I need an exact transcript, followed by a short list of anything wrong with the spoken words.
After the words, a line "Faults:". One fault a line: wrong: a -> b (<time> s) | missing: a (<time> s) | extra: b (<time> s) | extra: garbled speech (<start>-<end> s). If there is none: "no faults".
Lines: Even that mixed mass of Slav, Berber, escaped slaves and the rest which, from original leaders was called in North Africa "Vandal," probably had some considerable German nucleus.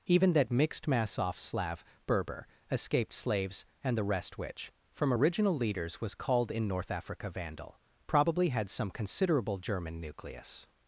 Even that mixed mass off Slav, Berber, escaped slaves and the rest which, from original leaders was called in North Africa "Vandal," probably had some considerable German nucleus.
Faults:
wrong: of -> off (1.2 s)